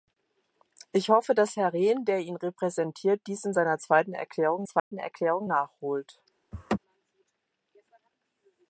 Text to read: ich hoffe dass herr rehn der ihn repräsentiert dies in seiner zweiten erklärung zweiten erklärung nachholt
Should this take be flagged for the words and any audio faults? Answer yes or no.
yes